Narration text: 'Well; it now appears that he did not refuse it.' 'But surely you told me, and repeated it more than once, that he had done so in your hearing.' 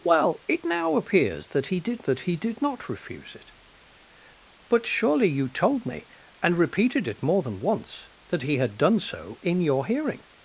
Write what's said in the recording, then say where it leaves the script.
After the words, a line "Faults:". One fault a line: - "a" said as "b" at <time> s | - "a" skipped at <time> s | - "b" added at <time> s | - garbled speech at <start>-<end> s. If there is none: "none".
'Well; it now appears that he did that he did not refuse it.' 'But surely you told me, and repeated it more than once, that he had done so in your hearing.'
Faults:
- "that he did" added at 2.0 s